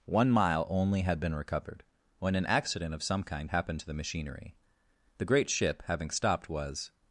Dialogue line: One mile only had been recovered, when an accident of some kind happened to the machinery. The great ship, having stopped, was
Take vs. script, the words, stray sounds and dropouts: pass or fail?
pass